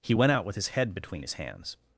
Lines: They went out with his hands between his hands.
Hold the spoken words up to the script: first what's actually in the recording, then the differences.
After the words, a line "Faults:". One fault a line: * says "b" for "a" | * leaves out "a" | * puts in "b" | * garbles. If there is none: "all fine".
He went out with his head between his hands.
Faults:
* says "He" for "They"
* says "head" for "hands"